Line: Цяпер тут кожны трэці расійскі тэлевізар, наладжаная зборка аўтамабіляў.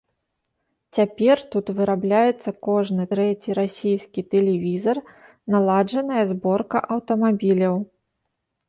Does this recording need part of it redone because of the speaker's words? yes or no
yes